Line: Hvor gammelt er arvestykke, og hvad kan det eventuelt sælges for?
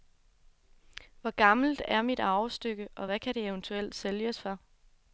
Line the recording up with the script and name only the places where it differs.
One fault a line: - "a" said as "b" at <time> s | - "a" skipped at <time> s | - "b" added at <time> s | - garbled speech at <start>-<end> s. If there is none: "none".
- "mit" added at 2.0 s